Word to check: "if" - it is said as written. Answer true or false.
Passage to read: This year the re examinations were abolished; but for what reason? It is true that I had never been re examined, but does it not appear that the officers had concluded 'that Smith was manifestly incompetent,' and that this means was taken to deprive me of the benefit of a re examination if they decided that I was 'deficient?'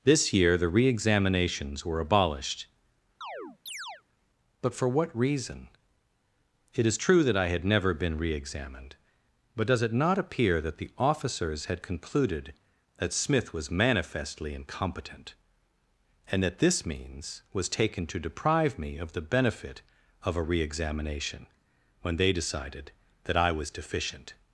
false